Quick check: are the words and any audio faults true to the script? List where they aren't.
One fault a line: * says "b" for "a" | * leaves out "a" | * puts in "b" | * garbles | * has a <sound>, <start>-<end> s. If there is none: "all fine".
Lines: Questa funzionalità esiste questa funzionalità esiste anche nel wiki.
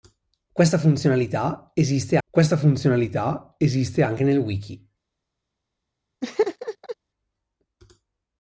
* has a laugh, 6.2-7.0 s